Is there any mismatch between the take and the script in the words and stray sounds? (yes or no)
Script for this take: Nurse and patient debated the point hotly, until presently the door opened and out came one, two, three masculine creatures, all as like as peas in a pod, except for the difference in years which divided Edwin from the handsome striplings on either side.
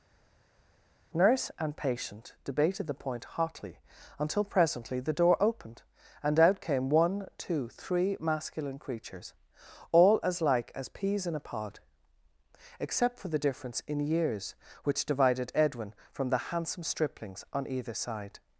no